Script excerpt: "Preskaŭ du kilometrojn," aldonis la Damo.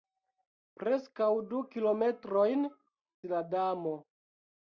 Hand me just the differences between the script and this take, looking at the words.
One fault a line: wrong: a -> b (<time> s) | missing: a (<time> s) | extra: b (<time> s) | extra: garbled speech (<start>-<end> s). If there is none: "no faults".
missing: aldonis (2.6 s)